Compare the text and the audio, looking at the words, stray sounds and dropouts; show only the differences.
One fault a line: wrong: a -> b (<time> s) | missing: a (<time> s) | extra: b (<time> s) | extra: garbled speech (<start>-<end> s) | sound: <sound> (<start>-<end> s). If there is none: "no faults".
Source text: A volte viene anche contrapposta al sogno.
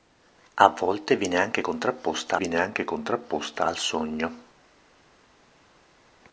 extra: viene anche contrapposta (2.3 s)